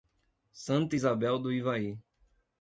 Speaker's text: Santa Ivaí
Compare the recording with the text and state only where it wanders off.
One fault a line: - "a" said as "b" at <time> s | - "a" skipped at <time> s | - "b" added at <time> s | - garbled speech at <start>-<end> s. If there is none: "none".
- "Isabel do" added at 0.9 s